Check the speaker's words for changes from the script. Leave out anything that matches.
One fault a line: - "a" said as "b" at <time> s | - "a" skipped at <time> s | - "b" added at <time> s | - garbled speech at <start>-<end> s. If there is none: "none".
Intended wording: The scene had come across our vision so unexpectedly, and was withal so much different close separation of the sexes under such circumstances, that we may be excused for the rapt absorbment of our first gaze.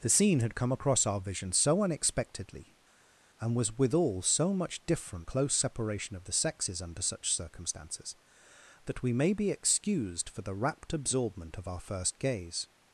none